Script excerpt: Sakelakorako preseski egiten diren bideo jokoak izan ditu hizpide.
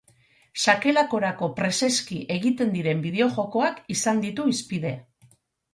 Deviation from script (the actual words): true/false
false